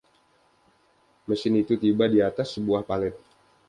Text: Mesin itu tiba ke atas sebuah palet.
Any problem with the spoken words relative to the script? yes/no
yes